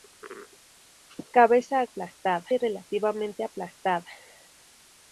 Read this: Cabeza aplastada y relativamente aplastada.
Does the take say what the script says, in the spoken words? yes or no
yes